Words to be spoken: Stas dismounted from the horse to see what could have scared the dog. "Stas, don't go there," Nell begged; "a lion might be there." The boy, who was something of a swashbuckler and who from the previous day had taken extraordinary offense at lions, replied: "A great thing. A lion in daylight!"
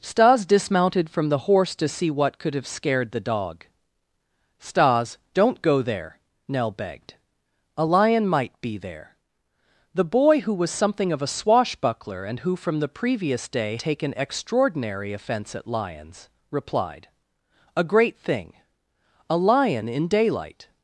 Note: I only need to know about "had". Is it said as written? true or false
false